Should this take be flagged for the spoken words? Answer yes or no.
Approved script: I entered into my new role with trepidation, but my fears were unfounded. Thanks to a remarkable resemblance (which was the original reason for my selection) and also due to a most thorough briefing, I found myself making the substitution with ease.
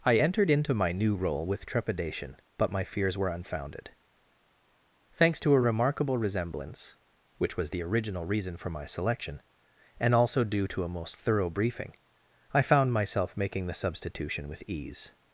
no